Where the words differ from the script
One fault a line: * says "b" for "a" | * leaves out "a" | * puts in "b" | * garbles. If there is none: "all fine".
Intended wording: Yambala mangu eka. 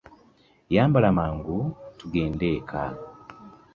* puts in "tugende"